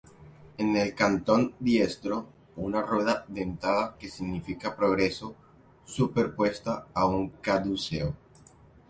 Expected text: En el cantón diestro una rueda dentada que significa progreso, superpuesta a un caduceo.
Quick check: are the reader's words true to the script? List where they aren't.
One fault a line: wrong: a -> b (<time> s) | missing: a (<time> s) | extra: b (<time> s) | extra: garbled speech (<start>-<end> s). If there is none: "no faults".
no faults